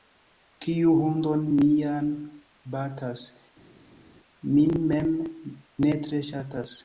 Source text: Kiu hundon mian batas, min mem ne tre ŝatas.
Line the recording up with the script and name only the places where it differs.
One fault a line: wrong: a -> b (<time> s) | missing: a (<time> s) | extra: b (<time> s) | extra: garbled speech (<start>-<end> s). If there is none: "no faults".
no faults